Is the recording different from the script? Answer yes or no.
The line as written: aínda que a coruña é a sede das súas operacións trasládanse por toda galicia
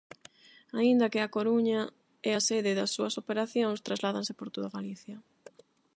no